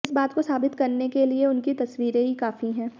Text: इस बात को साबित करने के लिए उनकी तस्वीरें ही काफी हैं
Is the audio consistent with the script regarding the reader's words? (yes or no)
yes